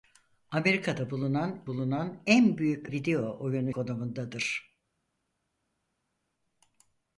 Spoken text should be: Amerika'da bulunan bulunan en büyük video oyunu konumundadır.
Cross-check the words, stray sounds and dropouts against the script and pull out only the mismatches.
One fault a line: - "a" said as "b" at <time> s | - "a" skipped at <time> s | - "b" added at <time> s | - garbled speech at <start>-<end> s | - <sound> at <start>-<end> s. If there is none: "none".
none